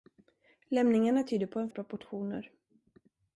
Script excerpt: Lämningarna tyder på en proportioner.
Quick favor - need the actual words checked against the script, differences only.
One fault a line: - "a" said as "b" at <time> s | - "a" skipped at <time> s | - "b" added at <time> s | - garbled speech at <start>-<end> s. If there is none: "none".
none